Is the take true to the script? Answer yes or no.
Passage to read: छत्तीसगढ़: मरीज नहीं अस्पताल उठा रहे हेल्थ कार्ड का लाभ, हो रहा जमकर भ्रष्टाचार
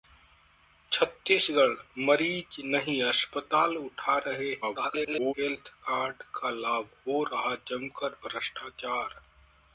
no